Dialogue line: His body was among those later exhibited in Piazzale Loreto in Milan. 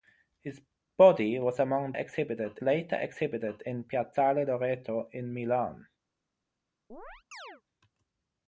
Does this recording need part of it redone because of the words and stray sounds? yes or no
yes